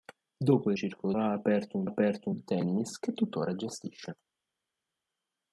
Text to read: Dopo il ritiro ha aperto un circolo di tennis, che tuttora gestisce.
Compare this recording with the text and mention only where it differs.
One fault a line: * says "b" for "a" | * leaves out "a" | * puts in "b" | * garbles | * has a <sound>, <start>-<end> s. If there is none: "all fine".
* says "circolo" for "ritiro"
* says "aperto" for "circolo"